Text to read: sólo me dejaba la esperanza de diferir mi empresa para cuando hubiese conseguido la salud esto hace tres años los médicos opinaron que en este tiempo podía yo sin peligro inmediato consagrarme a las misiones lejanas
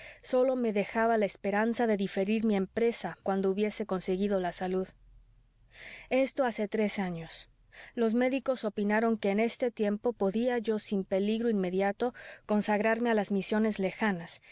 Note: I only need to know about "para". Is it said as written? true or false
false